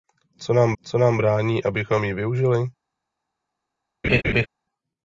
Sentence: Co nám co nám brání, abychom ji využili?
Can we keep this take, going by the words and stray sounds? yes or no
no